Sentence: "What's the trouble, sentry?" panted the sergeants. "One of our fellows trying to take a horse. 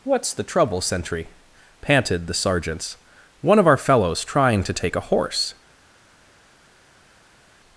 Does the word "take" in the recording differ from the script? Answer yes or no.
no